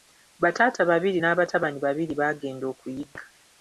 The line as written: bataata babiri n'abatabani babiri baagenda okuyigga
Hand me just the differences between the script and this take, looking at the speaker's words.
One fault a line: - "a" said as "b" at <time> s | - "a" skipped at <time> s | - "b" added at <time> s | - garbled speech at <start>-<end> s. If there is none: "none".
none